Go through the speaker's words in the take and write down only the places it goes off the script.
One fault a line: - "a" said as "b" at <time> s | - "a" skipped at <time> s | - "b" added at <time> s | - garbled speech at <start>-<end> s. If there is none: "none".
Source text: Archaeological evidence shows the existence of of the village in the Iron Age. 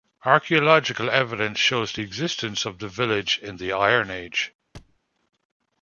- "of" skipped at 2.8 s